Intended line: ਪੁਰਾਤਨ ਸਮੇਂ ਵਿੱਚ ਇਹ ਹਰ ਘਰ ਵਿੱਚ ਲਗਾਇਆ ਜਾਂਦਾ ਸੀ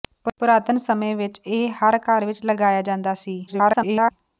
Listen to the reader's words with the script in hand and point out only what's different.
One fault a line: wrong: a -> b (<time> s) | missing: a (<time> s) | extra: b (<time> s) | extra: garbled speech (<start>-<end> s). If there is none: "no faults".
extra: garbled speech (3.5-4.1 s)